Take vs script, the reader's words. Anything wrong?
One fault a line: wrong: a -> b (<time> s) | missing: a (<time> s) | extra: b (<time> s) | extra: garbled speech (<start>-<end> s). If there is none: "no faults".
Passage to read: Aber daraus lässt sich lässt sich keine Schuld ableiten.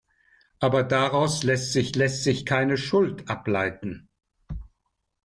no faults